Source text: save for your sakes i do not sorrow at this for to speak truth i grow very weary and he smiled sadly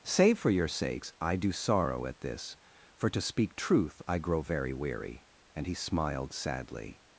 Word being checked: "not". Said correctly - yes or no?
no